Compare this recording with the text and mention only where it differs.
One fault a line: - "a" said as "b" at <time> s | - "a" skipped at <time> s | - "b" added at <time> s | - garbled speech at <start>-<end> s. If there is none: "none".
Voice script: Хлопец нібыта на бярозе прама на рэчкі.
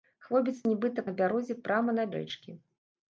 none